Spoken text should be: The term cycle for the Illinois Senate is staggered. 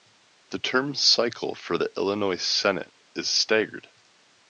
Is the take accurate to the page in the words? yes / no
yes